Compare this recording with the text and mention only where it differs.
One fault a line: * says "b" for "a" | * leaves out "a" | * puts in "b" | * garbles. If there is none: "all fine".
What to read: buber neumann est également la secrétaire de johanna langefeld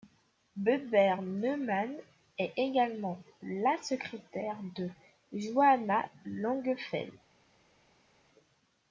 all fine